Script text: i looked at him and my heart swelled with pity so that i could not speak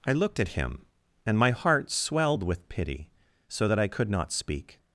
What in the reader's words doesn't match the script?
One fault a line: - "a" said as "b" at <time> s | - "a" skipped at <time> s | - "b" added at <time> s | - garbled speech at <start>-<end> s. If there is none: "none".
none